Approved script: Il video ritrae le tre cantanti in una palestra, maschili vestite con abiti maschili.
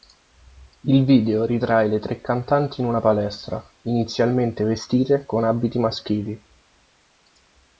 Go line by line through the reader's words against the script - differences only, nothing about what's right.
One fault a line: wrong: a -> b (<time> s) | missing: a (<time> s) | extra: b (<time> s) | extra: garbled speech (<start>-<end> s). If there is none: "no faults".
wrong: maschili -> inizialmente (3.8 s)